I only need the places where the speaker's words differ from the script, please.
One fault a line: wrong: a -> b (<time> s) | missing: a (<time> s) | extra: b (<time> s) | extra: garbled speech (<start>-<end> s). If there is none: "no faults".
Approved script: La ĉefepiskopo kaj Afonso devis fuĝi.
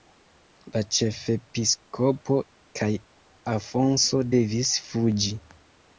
no faults